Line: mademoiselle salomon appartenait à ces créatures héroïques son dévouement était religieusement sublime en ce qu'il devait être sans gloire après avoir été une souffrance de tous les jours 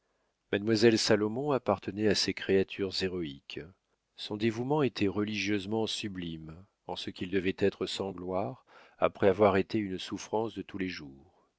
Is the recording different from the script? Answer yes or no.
no